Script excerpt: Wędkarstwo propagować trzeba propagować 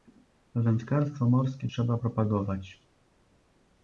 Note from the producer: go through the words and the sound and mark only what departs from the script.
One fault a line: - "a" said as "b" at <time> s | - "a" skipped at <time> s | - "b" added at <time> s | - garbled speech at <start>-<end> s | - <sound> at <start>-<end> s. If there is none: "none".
- "propagować" said as "morskie" at 1.3 s